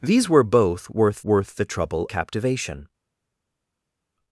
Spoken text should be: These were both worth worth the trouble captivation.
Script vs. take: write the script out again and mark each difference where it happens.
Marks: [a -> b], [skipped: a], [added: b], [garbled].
These were both worth worth the trouble captivation.